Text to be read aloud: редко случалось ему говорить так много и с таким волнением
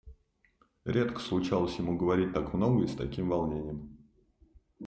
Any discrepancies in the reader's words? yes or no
no